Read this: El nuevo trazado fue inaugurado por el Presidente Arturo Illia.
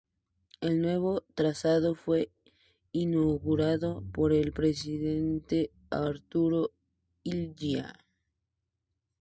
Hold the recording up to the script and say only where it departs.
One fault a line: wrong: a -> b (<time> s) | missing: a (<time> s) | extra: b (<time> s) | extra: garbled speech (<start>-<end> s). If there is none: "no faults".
no faults